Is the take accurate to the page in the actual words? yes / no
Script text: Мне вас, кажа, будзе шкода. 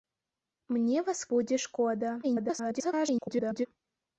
no